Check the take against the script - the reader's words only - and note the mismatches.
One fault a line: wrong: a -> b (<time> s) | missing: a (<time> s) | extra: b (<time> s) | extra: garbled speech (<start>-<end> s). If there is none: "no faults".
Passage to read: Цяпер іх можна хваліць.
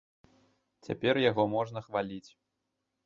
wrong: іх -> яго (1.3 s)